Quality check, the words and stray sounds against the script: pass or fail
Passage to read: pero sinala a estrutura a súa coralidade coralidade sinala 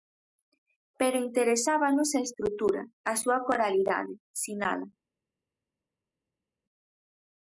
fail